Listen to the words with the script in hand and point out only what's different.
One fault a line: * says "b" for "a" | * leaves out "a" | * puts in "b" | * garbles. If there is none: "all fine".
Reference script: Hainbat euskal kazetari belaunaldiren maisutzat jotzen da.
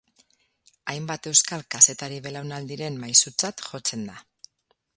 all fine